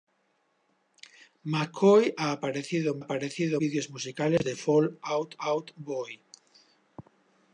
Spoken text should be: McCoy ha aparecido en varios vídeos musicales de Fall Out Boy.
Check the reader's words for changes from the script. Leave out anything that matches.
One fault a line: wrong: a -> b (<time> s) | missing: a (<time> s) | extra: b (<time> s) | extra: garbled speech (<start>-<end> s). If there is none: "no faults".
wrong: varios -> aparecido (3.0 s)
extra: Out (5.4 s)